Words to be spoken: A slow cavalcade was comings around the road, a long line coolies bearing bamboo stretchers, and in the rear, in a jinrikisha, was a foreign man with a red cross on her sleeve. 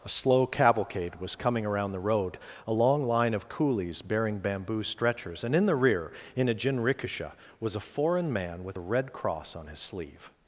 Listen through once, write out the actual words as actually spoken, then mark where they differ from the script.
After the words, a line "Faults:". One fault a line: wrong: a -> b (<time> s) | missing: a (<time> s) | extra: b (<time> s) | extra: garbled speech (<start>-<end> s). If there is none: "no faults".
A slow cavalcade was coming around the road, a long line of coolies bearing bamboo stretchers, and in the rear, in a jinrikisha, was a foreign man with a red cross on his sleeve.
Faults:
wrong: comings -> coming (1.4 s)
extra: of (3.4 s)
wrong: her -> his (9.7 s)